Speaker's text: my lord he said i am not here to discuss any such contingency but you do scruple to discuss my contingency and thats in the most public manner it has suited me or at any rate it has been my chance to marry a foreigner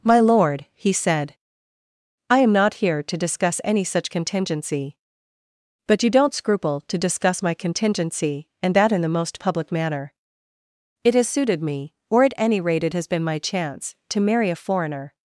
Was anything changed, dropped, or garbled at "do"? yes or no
yes